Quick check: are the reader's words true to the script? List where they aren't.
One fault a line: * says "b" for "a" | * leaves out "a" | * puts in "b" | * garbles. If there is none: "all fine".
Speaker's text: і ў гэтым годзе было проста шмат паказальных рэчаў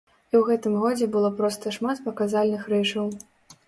all fine